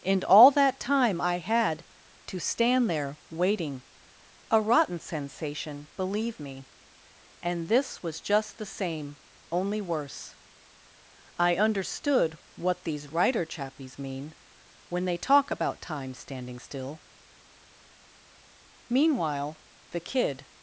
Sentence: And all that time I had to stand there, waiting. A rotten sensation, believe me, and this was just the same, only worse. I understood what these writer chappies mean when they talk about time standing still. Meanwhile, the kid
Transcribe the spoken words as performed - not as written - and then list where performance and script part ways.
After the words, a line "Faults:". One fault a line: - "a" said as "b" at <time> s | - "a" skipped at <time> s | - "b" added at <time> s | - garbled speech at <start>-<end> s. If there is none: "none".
And all that time I had to stand there, waiting. A rotten sensation, believe me, and this was just the same, only worse. I understood what these writer chappies mean when they talk about time standing still. Meanwhile, the kid
Faults:
none